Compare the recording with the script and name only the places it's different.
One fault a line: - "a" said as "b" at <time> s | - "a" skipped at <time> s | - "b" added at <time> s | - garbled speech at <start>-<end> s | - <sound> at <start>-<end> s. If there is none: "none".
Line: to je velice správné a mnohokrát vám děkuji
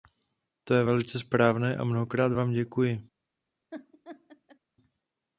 - laugh at 3.7-4.6 s